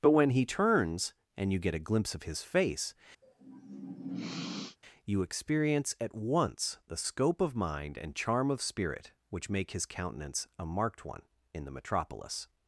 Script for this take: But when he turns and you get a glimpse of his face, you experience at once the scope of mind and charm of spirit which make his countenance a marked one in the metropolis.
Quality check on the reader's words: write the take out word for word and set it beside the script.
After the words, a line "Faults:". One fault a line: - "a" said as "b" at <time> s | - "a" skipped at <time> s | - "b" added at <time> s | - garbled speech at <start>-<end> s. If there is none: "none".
But when he turns and you get a glimpse of his face, you experience at once the scope of mind and charm of spirit which make his countenance a marked one in the metropolis.
Faults:
none